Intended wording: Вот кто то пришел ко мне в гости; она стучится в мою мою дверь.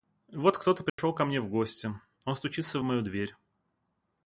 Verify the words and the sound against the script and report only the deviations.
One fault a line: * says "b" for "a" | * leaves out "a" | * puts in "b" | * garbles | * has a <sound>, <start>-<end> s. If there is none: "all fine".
* has a dropout, 0.9-1.0 s
* says "он" for "она"
* leaves out "мою"